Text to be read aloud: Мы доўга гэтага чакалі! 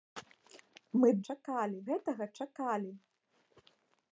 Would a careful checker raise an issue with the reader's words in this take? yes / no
yes